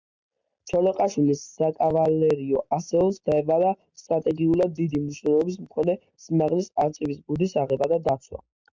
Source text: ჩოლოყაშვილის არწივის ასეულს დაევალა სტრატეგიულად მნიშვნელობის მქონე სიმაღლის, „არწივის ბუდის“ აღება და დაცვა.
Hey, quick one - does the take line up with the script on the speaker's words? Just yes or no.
no